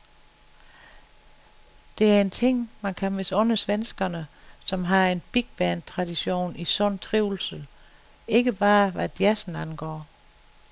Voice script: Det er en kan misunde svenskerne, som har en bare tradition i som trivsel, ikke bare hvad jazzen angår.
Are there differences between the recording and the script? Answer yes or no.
yes